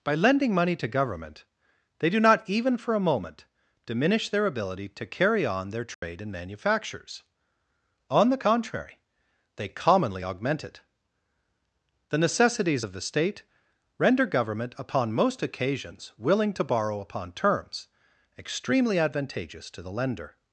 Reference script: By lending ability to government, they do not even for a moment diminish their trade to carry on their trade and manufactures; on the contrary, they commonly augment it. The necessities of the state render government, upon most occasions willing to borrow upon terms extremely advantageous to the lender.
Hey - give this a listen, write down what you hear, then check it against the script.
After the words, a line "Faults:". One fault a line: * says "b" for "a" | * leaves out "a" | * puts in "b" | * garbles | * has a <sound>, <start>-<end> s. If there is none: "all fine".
By lending money to government, they do not even for a moment diminish their ability to carry on their trade and manufactures; on the contrary, they commonly augment it. The necessities of the state render government, upon most occasions willing to borrow upon terms extremely advantageous to the lender.
Faults:
* says "money" for "ability"
* says "ability" for "trade"
* has a dropout, 5.9-6.0 s